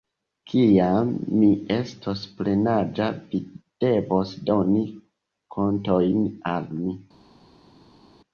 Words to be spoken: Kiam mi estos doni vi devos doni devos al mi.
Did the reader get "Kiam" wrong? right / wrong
right